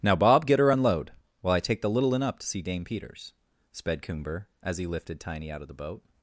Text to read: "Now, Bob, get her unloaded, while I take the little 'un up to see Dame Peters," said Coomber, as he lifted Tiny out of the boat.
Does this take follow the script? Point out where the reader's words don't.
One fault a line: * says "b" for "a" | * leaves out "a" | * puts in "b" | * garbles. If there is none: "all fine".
* says "unload" for "unloaded"
* says "sped" for "said"